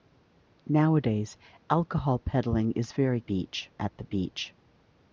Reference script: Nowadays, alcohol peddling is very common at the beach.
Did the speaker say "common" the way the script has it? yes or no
no